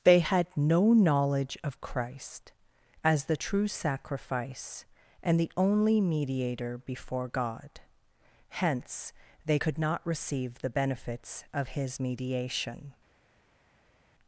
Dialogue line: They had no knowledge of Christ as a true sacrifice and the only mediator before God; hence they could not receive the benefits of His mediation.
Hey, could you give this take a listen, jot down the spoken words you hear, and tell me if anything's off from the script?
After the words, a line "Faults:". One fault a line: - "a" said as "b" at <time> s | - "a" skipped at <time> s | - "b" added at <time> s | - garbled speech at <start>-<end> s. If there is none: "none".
They had no knowledge of Christ as the true sacrifice and the only mediator before God; hence they could not receive the benefits of His mediation.
Faults:
- "a" said as "the" at 3.2 s